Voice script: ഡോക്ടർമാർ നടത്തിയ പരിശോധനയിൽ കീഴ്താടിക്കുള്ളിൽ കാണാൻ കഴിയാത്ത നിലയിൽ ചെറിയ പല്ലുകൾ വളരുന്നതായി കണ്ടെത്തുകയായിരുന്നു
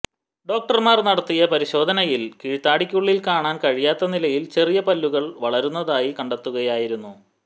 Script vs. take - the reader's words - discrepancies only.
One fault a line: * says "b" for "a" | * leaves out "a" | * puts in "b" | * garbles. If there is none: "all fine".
all fine